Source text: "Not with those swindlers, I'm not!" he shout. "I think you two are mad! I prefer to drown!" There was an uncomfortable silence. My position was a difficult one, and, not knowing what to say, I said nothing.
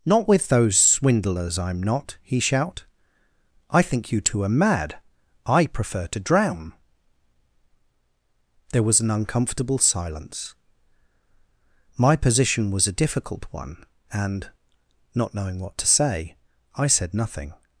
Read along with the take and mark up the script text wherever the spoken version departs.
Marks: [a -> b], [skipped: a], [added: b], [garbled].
"Not with those swindlers, I'm not!" he shout. "I think you two are mad! I prefer to drown!" There was an uncomfortable silence. My position was a difficult one, and, not knowing what to say, I said nothing.